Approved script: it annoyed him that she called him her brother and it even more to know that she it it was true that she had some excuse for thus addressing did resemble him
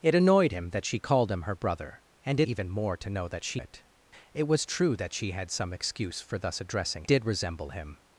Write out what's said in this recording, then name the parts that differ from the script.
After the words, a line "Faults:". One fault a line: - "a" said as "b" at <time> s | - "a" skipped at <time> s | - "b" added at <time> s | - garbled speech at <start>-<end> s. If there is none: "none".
it annoyed him that she called him her brother and it even more to know that she it it was true that she had some excuse for thus addressing did resemble him
Faults:
none